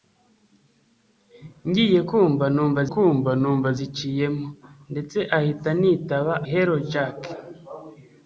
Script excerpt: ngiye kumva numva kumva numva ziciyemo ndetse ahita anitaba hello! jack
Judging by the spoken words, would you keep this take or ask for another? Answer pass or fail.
pass